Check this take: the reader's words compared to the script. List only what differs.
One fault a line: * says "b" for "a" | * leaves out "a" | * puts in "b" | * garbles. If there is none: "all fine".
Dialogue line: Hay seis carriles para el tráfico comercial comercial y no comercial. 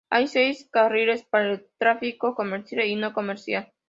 * leaves out "comercial"